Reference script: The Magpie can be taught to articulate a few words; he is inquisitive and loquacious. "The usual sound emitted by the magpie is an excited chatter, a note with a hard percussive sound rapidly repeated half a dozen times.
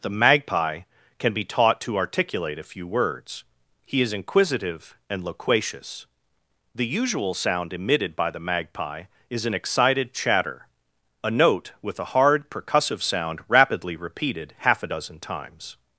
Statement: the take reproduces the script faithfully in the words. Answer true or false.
true